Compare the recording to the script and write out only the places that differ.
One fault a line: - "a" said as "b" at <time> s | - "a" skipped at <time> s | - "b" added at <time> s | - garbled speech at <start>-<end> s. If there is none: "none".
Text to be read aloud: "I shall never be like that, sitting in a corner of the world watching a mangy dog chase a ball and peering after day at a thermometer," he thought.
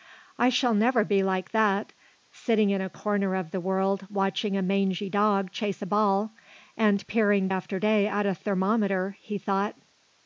none